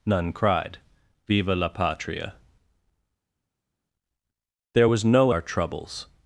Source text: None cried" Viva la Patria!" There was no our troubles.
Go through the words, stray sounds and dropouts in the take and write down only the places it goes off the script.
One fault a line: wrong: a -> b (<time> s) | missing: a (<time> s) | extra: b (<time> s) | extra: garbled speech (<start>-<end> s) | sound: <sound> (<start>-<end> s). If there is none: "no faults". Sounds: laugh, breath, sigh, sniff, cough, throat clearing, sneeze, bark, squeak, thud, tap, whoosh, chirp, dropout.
no faults